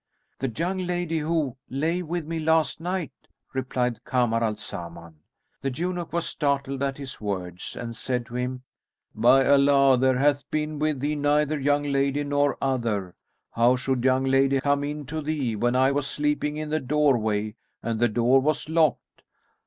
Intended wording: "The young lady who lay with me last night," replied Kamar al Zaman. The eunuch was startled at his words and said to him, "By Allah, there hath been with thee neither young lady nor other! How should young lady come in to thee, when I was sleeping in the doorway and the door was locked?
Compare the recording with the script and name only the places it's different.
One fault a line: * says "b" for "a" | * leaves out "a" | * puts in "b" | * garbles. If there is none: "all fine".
all fine